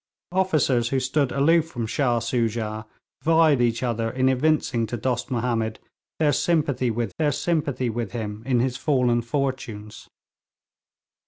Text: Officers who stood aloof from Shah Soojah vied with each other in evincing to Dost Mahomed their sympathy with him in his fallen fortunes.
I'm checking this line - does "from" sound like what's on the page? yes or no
yes